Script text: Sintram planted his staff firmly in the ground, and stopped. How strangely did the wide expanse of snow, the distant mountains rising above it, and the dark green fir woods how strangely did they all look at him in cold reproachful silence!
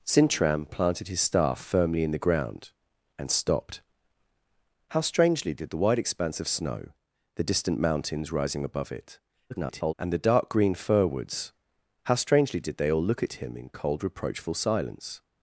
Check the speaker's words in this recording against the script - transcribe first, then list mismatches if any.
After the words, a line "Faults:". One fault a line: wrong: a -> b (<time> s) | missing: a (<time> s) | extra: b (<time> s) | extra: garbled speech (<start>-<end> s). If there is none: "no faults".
Sintram planted his staff firmly in the ground, and stopped. How strangely did the wide expanse of snow, the distant mountains rising above it, [garbled] and the dark green fir woods how strangely did they all look at him in cold reproachful silence!
Faults:
extra: garbled speech (9.5-9.9 s)